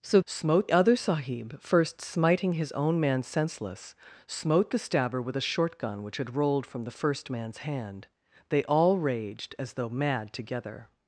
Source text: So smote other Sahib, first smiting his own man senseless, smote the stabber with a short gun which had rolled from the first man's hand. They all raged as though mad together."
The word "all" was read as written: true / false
true